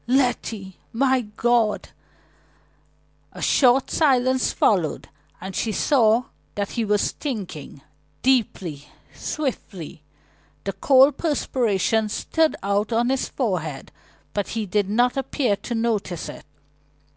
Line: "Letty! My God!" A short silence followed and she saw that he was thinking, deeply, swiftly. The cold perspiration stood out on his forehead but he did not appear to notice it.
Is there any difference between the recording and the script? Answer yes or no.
no